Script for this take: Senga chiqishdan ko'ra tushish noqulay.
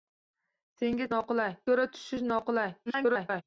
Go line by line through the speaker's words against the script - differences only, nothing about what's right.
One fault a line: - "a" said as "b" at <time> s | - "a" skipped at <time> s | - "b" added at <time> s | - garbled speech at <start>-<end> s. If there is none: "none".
- "chiqishdan" said as "noqulay" at 1.2 s
- garbled speech at 2.9-3.4 s